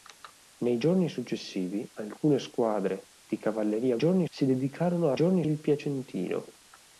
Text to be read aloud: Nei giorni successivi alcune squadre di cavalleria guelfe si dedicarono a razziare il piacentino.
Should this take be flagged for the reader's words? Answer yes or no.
yes